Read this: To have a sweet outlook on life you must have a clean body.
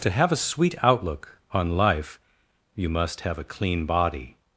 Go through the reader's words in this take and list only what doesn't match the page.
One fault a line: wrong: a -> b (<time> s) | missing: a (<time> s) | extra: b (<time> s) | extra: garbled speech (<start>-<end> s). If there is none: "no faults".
no faults